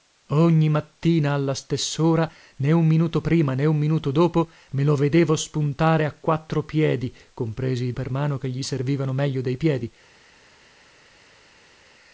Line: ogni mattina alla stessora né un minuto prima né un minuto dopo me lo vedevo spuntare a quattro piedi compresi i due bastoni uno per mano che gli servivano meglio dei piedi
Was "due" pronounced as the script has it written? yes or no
no